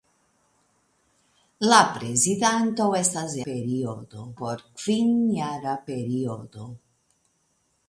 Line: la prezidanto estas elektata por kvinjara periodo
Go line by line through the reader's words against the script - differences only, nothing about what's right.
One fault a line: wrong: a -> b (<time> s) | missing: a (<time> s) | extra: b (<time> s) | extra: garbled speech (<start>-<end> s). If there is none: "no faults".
wrong: elektata -> periodo (3.5 s)